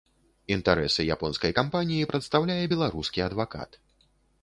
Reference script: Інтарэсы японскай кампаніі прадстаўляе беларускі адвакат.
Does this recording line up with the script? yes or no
yes